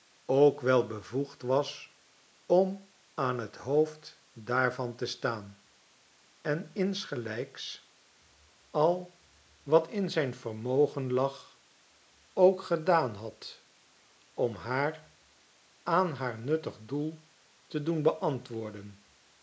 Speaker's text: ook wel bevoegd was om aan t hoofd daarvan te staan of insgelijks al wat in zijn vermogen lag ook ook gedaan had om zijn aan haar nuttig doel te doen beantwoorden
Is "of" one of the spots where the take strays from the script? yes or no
yes